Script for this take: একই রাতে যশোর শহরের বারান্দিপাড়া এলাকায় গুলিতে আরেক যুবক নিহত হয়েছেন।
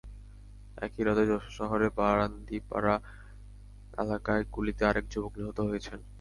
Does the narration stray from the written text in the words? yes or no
no